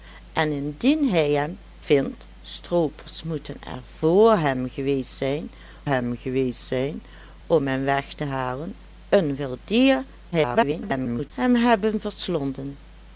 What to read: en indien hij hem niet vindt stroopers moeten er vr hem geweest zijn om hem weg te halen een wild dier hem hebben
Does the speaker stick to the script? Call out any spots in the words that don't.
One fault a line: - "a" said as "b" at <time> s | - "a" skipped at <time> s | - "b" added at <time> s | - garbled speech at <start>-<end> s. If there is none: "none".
- "niet" skipped at 1.6 s
- "hem geweest zijn" added at 5.8 s
- garbled speech at 10.3-11.3 s